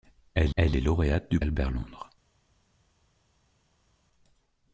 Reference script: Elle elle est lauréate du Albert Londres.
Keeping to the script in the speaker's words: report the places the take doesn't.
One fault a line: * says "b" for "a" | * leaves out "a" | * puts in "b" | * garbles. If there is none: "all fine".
all fine